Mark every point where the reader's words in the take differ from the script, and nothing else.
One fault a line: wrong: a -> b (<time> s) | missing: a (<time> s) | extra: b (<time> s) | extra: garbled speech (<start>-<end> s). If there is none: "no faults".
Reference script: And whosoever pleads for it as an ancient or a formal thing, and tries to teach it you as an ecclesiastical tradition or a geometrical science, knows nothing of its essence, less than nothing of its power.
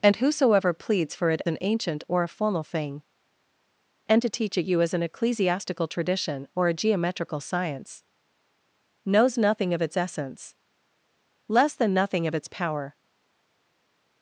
missing: as (1.4 s)
missing: tries (4.2 s)